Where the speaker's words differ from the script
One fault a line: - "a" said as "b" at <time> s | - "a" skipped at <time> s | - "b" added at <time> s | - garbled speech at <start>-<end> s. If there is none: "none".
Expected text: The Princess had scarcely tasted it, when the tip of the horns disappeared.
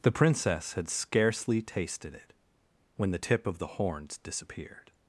none